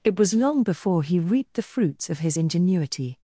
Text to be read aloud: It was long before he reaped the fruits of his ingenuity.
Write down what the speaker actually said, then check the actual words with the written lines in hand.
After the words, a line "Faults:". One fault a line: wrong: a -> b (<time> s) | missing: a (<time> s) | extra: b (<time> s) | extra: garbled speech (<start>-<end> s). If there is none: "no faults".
It was long before he reaped the fruits of his ingenuity.
Faults:
no faults